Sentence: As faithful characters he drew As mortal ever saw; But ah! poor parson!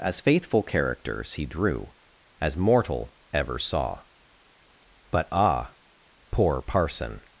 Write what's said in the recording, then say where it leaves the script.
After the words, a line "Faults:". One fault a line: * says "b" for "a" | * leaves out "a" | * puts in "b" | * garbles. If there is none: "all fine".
As faithful characters he drew As mortal ever saw; But ah! poor parson!
Faults:
all fine